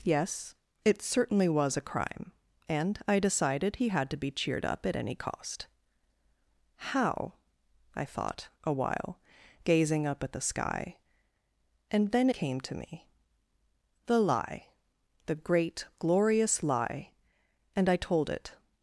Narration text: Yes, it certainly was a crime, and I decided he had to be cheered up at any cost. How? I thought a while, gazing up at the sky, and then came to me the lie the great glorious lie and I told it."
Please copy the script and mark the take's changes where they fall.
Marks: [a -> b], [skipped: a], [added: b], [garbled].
Yes, it certainly was a crime, and I decided he had to be cheered up at any cost. How? I thought a while, gazing up at the sky, and then came to me the lie the great glorious lie and I told it."